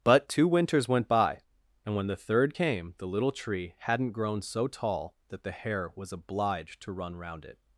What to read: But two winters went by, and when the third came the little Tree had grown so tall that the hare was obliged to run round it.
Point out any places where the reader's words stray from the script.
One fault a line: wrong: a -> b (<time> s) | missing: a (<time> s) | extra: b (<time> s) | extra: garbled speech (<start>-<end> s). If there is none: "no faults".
wrong: had -> hadn't (3.8 s)